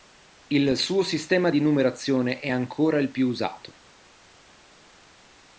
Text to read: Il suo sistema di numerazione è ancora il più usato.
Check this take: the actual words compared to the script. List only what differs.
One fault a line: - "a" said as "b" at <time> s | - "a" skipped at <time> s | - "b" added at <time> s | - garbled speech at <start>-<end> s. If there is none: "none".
none